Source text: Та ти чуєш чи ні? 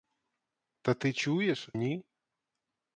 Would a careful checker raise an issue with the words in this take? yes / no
yes